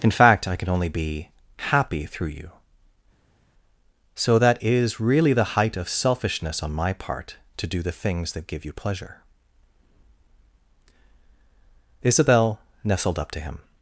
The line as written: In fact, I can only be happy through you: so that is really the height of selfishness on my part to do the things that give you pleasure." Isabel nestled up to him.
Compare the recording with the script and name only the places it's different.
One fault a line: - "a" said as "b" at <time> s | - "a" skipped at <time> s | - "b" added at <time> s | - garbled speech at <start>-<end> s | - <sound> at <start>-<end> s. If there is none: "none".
none